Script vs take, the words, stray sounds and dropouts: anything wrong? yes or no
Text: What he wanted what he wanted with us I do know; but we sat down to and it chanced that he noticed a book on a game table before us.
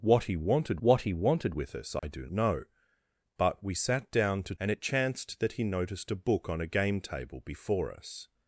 yes